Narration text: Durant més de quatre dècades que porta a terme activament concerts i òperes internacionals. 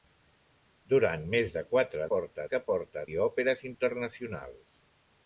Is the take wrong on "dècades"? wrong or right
wrong